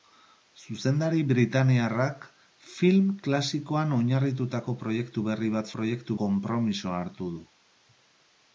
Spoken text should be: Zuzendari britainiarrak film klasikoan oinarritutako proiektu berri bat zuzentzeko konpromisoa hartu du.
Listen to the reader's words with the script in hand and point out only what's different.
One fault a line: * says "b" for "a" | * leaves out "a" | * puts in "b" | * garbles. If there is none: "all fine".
* says "proiektu" for "zuzentzeko"